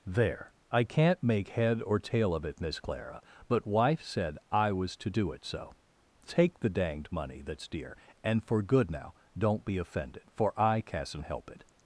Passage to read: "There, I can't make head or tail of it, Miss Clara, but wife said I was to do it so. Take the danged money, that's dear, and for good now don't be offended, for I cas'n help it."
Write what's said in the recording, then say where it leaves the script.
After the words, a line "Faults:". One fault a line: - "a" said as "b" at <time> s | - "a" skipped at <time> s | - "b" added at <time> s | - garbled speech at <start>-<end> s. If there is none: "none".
"There, I can't make head or tail of it, Miss Clara, but wife said I was to do it so. Take the danged money, that's dear, and for good now don't be offended, for I cas'n help it."
Faults:
none